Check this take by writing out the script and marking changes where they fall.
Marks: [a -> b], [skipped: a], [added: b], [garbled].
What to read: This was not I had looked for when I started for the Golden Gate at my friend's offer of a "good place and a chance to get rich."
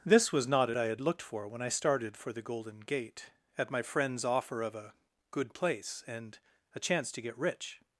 This was not I had looked for when I started for the Golden Gate at my friend's offer of a "good place and a chance to get rich."